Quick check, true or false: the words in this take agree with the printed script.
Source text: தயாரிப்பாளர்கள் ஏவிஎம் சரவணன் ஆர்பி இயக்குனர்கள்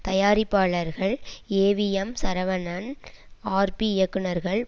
true